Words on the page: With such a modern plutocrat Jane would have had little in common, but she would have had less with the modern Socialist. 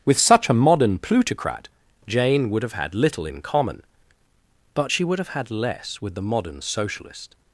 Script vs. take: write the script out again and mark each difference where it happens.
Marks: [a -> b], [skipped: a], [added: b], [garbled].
With such a modern plutocrat Jane would have had little in common, but she would have had less with the modern Socialist.